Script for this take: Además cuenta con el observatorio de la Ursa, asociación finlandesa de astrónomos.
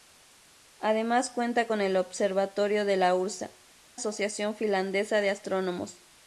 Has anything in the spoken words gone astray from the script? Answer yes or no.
no